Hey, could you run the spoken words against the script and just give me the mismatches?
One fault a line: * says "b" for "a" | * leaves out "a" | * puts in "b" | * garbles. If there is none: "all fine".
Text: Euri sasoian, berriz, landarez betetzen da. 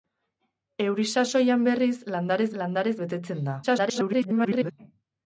* puts in "landarez"
* garbles